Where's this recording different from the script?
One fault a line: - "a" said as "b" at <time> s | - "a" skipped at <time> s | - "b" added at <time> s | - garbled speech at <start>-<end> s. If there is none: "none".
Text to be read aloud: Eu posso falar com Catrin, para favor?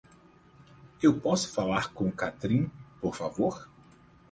- "para" said as "por" at 3.0 s